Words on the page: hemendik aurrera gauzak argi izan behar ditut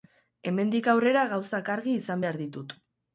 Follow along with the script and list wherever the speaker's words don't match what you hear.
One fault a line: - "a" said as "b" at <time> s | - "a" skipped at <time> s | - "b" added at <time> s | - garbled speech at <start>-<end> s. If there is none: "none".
none